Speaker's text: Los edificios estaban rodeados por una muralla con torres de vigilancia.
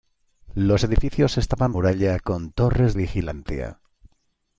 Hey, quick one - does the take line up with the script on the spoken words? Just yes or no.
no